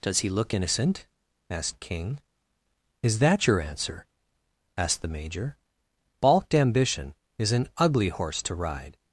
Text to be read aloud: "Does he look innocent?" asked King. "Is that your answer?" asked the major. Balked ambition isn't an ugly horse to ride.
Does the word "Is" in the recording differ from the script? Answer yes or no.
no